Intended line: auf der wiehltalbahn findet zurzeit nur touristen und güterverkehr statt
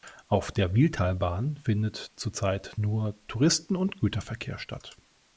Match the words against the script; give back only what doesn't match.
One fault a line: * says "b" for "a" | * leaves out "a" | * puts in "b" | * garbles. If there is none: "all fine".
all fine